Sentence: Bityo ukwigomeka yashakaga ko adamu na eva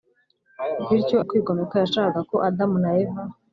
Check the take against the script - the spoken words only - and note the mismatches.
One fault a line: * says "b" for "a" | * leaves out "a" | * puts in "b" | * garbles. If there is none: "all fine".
all fine